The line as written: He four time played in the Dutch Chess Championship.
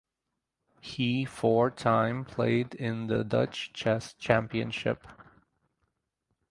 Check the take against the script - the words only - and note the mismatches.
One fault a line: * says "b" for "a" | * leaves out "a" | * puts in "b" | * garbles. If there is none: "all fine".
all fine